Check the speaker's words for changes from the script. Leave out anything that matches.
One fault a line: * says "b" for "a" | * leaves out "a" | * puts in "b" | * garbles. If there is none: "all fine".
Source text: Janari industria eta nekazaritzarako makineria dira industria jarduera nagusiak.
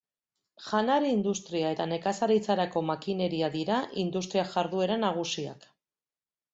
all fine